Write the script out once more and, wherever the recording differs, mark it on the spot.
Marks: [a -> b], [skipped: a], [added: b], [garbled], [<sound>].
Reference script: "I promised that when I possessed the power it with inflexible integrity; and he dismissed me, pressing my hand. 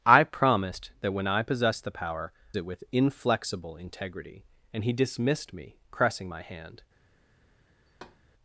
"I promised that when I possessed the power it with inflexible integrity; and he dismissed me, pressing my hand. [thud]